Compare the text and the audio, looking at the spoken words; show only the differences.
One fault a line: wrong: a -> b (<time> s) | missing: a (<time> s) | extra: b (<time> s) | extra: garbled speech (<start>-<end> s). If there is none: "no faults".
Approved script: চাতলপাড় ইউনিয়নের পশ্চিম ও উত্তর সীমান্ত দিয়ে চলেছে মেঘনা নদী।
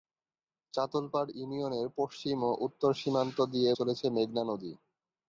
no faults